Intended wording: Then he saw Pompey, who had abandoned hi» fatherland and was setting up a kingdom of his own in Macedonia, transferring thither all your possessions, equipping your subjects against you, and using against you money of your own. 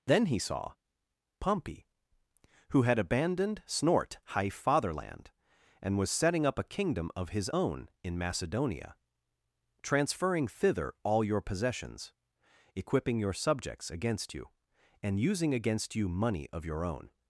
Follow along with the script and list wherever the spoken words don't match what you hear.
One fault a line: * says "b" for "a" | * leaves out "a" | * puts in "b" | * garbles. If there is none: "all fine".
* says "snort high" for "hi"